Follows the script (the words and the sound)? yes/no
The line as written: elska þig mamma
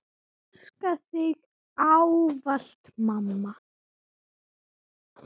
no